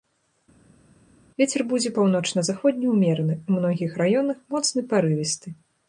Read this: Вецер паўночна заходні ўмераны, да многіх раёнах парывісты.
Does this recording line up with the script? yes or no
no